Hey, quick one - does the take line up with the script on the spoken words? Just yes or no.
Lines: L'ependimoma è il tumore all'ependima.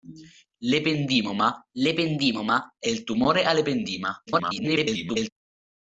no